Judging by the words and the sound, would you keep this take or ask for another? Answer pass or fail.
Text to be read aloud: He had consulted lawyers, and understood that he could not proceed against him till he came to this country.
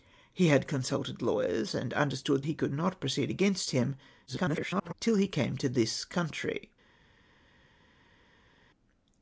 fail